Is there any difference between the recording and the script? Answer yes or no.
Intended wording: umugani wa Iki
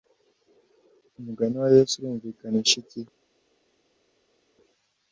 yes